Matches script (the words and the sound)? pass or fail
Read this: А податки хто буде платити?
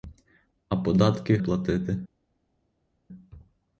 fail